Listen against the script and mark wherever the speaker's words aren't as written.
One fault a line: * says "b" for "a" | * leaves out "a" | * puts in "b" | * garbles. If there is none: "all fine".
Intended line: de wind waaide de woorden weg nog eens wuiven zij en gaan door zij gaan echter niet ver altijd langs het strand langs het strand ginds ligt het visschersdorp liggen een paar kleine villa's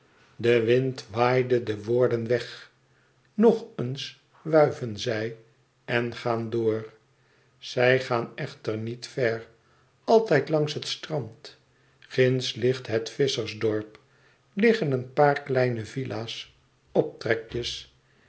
* leaves out "langs het strand"